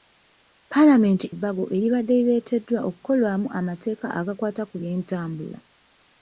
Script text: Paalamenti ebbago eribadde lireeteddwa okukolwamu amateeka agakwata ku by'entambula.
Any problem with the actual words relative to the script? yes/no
no